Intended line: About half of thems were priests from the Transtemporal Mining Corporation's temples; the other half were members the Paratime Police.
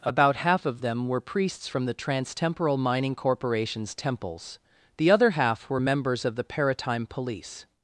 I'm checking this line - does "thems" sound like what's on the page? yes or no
no